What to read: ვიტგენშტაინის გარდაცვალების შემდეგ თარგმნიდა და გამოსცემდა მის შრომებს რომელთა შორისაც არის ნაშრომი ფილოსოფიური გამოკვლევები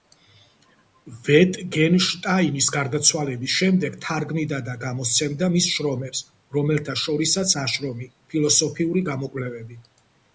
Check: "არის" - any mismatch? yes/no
yes